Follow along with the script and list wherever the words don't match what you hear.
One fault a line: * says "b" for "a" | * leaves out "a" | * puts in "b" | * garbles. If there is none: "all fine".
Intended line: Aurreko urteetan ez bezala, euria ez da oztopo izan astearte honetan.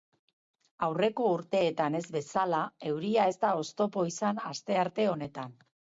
all fine